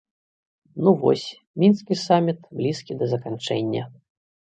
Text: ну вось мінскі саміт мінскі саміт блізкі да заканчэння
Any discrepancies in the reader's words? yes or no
yes